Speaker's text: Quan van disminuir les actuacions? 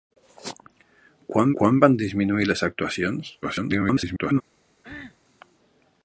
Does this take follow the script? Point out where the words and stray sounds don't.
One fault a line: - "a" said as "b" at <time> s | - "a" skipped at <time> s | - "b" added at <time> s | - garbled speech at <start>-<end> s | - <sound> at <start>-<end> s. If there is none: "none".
- "quan" added at 1.6 s
- garbled speech at 3.4-4.4 s
- cough at 4.8-5.2 s